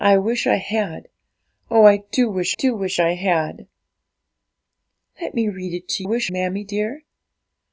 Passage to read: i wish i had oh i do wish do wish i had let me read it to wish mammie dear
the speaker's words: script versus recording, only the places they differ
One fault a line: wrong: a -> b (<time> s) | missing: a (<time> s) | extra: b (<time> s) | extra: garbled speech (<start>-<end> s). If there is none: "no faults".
no faults